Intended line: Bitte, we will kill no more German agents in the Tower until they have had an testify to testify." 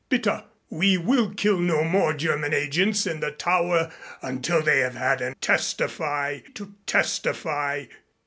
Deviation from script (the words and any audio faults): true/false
false